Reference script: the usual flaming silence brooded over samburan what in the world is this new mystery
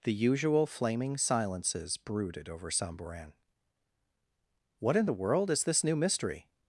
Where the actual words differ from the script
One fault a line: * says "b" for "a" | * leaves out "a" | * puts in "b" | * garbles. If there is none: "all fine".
* says "silences" for "silence"